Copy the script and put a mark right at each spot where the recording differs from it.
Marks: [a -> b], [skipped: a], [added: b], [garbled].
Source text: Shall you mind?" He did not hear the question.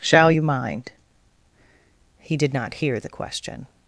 Shall you mind?" He did not hear the question.